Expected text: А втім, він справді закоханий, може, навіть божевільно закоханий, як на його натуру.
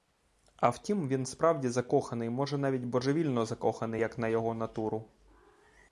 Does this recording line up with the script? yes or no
yes